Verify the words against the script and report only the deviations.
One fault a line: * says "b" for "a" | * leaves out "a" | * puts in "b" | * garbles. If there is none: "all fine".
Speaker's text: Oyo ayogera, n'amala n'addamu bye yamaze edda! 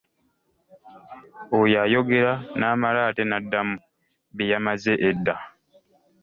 * puts in "ate"